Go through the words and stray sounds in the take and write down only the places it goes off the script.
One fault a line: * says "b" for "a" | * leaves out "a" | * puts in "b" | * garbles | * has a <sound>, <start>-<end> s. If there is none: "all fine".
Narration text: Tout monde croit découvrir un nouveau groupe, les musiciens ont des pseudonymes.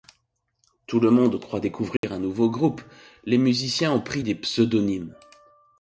* puts in "le"
* has a dropout, 2.0-2.0 s
* puts in "pris"